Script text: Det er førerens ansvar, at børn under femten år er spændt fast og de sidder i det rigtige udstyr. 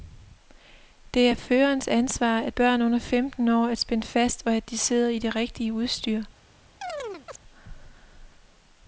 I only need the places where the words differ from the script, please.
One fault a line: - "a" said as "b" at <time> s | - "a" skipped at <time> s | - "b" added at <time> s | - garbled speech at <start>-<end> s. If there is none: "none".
- "at" added at 4.5 s